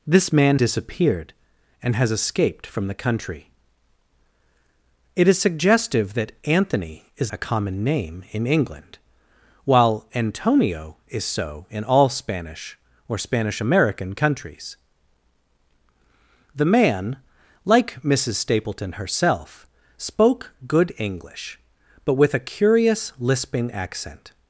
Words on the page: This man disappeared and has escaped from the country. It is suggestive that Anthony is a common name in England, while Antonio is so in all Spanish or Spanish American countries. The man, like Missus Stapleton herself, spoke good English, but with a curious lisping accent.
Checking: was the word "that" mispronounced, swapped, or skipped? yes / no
no